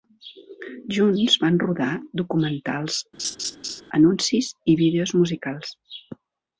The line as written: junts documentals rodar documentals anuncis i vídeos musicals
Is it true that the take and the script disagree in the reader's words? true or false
true